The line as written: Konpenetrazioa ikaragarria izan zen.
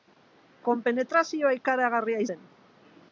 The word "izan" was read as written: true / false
false